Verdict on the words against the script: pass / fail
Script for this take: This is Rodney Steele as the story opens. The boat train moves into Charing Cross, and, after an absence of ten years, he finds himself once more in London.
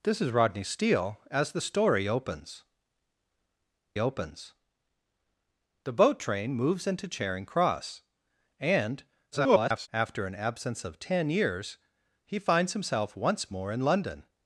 fail